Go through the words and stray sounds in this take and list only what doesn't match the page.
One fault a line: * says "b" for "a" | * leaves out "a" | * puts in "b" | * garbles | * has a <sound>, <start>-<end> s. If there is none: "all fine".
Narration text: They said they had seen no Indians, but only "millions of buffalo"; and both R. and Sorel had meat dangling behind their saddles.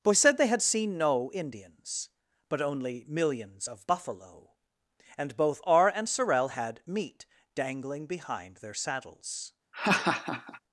* says "Boy" for "They"
* has a laugh, 9.7-10.6 s